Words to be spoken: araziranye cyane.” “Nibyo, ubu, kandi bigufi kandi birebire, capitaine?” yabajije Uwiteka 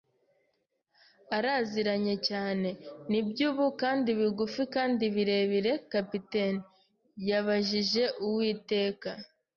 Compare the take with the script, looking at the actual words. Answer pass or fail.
pass